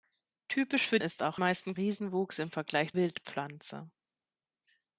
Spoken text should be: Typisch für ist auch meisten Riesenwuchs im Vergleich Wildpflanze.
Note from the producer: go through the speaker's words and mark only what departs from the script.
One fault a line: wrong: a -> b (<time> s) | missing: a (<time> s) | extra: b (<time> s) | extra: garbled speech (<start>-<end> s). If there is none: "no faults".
no faults